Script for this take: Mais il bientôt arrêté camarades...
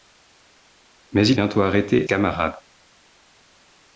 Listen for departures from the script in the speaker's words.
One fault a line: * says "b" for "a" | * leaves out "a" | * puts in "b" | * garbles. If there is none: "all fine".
all fine